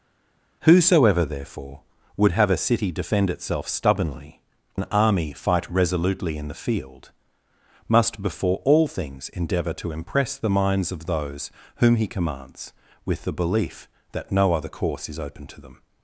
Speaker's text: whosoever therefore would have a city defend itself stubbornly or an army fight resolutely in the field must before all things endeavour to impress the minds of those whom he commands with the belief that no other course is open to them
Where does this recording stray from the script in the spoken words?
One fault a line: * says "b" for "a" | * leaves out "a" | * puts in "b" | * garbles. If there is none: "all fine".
* leaves out "or"